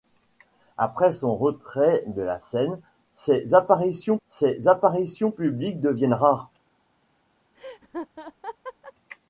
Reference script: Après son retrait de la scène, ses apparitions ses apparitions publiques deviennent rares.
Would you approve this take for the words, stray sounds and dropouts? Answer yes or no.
no